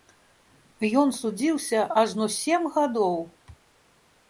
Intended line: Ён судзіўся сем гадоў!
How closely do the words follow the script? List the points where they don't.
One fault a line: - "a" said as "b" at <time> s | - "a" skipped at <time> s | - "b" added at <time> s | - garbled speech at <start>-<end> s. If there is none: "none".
- "ажно" added at 2.0 s